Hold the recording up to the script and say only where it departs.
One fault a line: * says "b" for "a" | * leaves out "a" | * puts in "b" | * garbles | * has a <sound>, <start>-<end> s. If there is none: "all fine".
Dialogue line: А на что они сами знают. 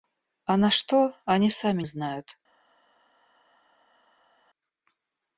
all fine